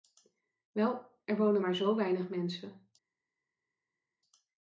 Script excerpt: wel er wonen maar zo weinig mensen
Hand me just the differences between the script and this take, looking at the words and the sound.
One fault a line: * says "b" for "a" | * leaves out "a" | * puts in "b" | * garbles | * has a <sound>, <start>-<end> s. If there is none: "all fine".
all fine